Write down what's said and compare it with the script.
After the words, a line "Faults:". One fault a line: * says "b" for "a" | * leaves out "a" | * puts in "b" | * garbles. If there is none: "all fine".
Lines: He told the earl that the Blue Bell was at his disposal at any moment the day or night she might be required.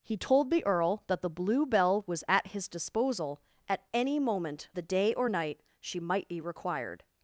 He told the earl that the Blue Bell was at his disposal at any moment the day or night she might be required.
Faults:
all fine